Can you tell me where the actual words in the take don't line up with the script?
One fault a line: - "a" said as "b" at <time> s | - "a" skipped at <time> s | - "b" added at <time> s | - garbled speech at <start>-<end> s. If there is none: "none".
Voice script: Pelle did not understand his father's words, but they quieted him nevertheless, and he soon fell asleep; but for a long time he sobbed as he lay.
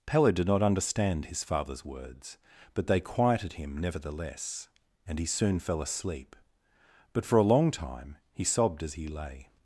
none